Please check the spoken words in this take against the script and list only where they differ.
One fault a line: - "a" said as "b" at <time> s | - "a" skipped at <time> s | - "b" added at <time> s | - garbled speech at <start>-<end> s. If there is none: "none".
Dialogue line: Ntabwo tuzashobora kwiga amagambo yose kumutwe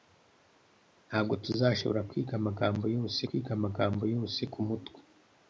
- "kwiga amagambo yose" added at 3.3 s